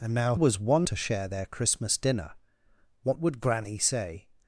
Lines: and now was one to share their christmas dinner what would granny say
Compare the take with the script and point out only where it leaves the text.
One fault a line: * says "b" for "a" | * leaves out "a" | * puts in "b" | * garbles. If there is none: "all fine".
all fine